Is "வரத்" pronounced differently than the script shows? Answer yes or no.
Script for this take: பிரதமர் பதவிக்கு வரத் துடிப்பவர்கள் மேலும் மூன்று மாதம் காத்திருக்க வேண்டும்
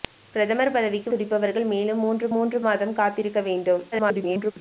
yes